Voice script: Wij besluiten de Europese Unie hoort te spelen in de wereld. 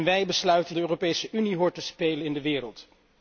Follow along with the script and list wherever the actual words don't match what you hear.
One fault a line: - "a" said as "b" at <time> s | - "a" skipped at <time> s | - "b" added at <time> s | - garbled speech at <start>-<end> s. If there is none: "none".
none